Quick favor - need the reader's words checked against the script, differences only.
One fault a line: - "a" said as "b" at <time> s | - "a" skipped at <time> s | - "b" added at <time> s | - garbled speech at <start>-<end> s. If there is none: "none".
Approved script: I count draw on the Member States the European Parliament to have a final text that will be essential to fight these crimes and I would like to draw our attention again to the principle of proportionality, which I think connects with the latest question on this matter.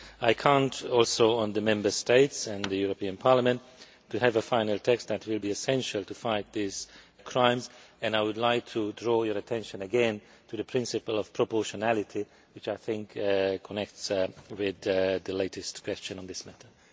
- "draw" said as "also" at 0.8 s
- "and" added at 2.5 s
- "our" said as "your" at 9.2 s